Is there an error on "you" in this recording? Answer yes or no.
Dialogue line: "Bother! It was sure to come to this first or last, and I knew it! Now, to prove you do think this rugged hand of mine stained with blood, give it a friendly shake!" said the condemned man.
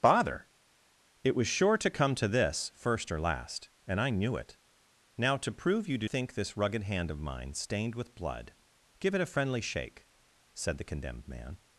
no